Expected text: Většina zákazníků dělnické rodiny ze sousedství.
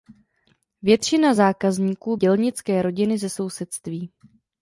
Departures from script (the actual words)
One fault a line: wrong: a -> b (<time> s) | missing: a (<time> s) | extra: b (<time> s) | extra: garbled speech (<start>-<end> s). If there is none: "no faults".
no faults